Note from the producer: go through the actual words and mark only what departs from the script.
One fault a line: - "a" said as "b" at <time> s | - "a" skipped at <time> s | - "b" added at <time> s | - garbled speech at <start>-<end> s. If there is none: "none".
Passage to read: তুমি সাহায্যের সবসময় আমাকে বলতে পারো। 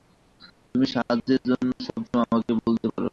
- "জন্য" added at 1.5 s